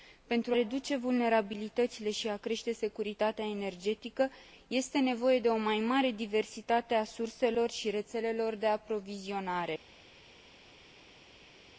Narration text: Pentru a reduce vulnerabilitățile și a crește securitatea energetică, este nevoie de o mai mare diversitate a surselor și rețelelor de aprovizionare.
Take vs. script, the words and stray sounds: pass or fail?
fail